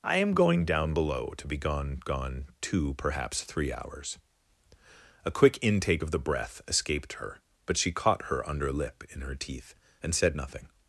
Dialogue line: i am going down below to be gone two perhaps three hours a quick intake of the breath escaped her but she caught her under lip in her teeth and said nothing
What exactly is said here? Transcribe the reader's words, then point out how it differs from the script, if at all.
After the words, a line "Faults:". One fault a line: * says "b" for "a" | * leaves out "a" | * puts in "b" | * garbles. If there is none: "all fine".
i am going down below to be gone gone two perhaps three hours a quick intake of the breath escaped her but she caught her under lip in her teeth and said nothing
Faults:
* puts in "gone"